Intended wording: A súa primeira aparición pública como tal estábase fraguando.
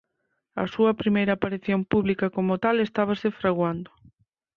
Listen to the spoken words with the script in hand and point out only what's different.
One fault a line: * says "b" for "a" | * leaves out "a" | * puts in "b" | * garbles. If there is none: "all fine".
all fine